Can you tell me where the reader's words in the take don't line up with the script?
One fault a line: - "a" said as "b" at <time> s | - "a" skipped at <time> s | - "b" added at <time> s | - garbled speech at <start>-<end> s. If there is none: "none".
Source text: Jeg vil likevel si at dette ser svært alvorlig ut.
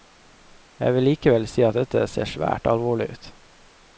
none